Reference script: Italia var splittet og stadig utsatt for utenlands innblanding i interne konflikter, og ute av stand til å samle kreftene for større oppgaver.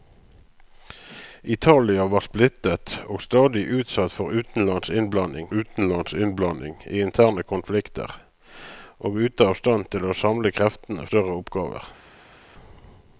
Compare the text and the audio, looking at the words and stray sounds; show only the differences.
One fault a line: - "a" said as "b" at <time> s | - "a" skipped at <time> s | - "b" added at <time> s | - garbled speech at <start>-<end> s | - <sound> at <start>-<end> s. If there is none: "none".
- "utenlands innblanding" added at 5.5 s
- "for" skipped at 11.1 s